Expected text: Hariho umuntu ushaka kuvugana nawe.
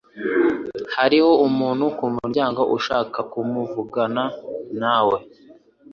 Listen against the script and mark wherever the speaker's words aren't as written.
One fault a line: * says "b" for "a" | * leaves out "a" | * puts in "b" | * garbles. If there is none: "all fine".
* puts in "kumuryango"